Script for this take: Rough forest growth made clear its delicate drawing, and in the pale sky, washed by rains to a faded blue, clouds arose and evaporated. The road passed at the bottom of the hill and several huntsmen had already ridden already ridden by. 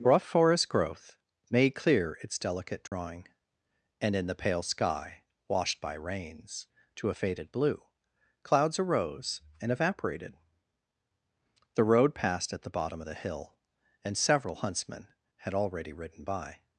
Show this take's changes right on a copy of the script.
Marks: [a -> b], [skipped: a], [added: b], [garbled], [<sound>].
Rough forest growth made clear its delicate drawing, [dropout] and in the pale sky, washed by rains to a faded blue, clouds arose and evaporated. The road passed at the bottom of the hill and several huntsmen had already ridden [skipped: already ridden] by.